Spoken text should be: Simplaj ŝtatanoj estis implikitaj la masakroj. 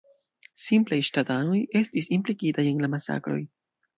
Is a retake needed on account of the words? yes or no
yes